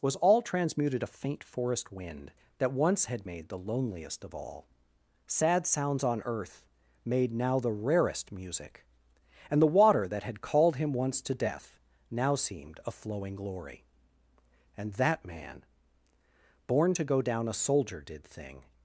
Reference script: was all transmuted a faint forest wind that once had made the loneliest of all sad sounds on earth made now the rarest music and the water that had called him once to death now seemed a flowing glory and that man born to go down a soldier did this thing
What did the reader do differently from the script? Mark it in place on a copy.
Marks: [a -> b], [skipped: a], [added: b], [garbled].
was all transmuted a faint forest wind that once had made the loneliest of all sad sounds on earth made now the rarest music and the water that had called him once to death now seemed a flowing glory and that man born to go down a soldier did [skipped: this] thing